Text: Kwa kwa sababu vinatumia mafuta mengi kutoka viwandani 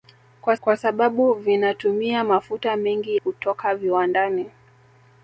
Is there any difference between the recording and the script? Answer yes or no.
no